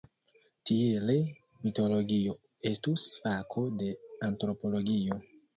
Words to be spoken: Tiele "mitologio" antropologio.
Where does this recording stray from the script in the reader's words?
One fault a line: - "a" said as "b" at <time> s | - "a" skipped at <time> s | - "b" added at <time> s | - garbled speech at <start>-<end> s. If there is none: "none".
- "estus fako de" added at 2.7 s